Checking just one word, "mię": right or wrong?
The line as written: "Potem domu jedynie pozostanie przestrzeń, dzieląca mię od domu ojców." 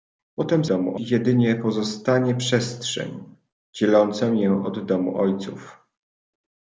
right